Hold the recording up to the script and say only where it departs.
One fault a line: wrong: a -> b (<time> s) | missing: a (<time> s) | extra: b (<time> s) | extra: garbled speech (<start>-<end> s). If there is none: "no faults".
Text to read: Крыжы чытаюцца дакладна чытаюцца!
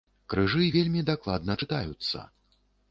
wrong: чытаюцца -> вельмі (0.8 s)